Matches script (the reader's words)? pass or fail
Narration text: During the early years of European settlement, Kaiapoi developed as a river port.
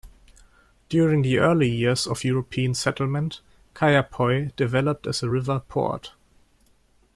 pass